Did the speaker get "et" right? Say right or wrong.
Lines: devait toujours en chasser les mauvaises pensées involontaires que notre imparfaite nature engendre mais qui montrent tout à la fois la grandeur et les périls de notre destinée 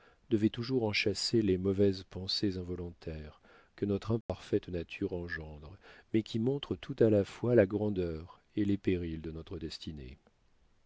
right